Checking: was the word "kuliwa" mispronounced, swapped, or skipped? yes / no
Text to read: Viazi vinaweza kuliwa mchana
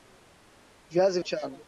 yes